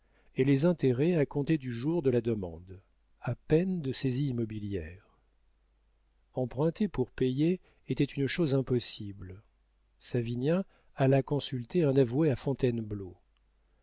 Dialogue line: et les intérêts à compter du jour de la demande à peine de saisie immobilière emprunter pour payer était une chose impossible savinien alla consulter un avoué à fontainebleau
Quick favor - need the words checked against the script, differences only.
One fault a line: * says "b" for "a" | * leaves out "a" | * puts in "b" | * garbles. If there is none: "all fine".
all fine